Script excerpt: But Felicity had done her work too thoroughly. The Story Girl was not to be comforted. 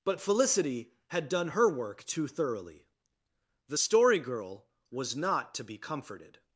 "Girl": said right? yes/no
yes